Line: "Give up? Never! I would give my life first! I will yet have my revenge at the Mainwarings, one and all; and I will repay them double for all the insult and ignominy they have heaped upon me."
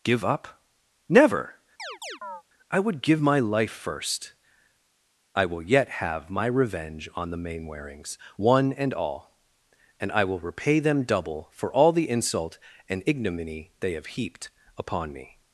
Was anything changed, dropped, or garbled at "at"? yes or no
yes